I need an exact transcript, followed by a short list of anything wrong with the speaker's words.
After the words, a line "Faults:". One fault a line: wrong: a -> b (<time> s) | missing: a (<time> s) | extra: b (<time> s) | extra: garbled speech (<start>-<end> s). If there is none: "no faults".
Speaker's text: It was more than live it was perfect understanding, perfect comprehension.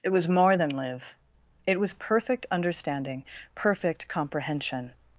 It was more than live it was perfect understanding, perfect comprehension.
Faults:
no faults